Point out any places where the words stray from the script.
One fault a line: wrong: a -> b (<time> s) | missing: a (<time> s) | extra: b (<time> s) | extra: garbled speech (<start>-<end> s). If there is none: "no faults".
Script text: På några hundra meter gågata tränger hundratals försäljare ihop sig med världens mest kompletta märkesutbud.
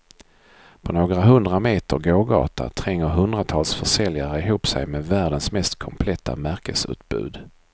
no faults